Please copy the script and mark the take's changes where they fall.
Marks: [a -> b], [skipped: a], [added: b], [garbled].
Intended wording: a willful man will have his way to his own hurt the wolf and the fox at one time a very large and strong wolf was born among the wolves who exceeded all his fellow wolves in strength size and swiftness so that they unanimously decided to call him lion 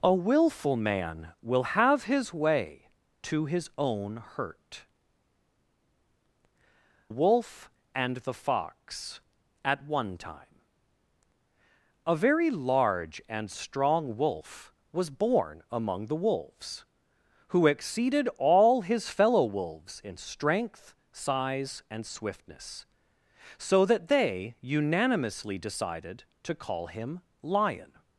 a willful man will have his way to his own hurt [skipped: the] wolf and the fox at one time a very large and strong wolf was born among the wolves who exceeded all his fellow wolves in strength size and swiftness so that they unanimously decided to call him lion